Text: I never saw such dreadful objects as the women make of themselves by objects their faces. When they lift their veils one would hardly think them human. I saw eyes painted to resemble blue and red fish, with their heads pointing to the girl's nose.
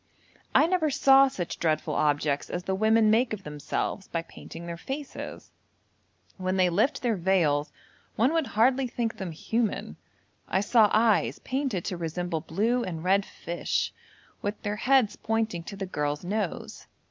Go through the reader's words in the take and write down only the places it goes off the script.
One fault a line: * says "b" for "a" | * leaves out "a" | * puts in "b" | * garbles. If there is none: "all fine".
* says "painting" for "objects"